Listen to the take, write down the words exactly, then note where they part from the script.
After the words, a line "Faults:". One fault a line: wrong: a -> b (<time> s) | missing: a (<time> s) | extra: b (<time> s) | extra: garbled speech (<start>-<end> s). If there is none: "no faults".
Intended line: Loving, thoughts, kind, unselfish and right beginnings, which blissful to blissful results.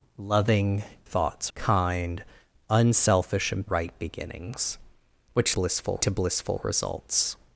Loving, thoughts, kind, unselfish and right beginnings, which blissful to blissful results.
Faults:
no faults